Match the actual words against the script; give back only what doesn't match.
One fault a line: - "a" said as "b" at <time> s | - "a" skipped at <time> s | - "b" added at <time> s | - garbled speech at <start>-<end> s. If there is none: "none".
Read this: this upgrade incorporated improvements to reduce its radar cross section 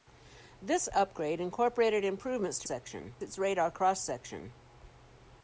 - "reduce" said as "section" at 2.6 s